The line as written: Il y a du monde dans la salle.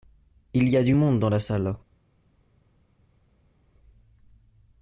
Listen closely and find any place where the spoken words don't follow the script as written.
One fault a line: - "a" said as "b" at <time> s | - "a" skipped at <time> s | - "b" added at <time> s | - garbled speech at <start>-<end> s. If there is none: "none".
none